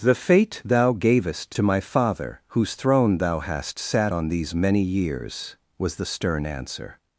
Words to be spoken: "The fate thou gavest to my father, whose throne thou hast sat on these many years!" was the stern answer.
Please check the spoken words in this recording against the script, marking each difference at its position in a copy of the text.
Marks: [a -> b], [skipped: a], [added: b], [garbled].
"The fate thou gavest to my father, whose throne thou hast sat on these many years!" was the stern answer.